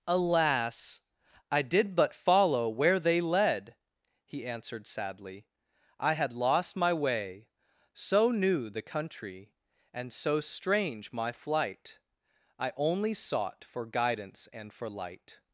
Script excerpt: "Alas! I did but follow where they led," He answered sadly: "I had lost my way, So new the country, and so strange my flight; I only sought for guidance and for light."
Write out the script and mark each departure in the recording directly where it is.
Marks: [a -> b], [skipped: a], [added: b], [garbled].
"Alas! I did but follow where they led," He answered sadly: "I had lost my way, So new the country, and so strange my flight; I only sought for guidance and for light."